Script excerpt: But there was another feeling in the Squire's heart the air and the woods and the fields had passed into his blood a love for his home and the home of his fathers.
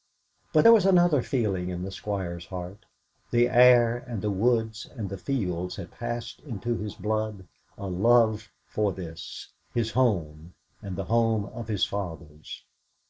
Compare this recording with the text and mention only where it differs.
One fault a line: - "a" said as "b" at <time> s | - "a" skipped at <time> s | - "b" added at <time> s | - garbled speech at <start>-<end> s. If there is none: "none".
- "this" added at 8.9 s